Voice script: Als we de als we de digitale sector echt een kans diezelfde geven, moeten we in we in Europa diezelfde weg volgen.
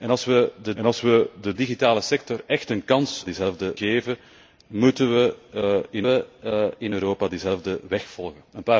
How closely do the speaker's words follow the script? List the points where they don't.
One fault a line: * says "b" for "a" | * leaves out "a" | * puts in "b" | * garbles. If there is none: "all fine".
all fine